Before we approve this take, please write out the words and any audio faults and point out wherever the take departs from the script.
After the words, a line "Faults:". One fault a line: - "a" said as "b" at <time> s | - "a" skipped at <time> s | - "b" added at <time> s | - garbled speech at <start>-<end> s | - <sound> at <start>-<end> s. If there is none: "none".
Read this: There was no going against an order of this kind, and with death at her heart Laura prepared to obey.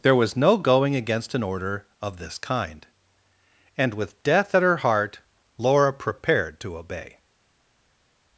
There was no going against an order of this kind, and with death at her heart Laura prepared to obey.
Faults:
none